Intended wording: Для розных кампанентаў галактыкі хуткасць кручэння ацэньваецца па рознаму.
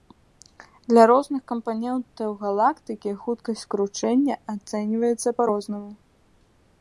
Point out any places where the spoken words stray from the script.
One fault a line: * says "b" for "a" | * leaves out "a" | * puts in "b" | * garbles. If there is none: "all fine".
all fine